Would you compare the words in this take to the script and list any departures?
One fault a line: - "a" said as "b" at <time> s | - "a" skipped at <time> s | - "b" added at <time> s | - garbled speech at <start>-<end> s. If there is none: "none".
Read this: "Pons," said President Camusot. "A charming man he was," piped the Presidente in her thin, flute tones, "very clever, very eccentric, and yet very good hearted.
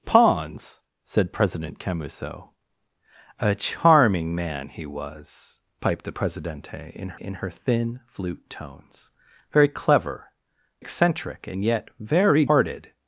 - "in" added at 7.2 s
- "very" skipped at 10.3 s
- "good" skipped at 12.4 s